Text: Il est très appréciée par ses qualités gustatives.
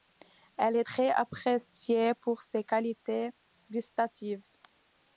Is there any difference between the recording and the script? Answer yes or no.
yes